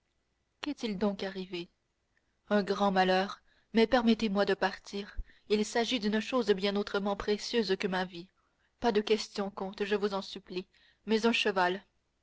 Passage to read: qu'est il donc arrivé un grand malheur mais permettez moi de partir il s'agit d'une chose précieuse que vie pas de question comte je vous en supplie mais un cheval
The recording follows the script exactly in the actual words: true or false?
false